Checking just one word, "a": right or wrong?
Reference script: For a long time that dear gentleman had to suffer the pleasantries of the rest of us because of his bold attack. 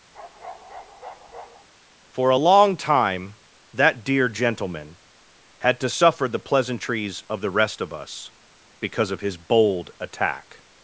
right